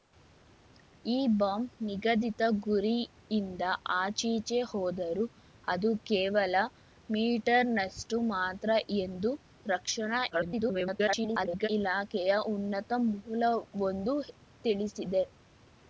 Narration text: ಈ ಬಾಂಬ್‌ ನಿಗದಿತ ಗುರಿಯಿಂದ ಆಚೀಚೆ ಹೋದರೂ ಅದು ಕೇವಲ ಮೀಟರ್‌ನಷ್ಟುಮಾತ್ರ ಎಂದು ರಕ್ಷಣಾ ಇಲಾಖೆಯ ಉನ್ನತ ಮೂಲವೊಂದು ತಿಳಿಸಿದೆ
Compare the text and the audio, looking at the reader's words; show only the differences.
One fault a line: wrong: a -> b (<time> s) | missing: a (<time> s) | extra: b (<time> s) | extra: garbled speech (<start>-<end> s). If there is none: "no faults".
extra: garbled speech (10.3-11.7 s)